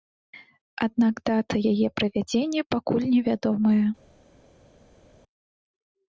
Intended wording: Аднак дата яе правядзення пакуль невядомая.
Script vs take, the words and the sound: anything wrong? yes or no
no